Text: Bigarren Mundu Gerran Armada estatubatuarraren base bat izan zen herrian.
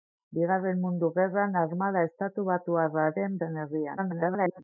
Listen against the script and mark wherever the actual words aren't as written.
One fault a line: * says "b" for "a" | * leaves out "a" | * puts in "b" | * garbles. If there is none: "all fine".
* leaves out "base bat izan"
* garbles